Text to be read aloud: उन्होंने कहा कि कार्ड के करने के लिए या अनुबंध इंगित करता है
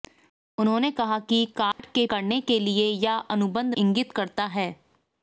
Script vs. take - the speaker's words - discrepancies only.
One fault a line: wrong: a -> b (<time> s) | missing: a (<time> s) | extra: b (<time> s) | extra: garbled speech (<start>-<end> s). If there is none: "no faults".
no faults